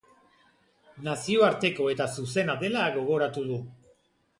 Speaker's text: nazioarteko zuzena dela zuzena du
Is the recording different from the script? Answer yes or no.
yes